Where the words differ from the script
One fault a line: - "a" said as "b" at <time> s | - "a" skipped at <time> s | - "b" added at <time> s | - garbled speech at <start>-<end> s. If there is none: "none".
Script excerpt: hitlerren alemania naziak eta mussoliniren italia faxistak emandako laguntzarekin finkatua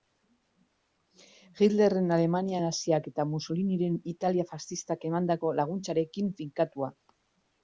none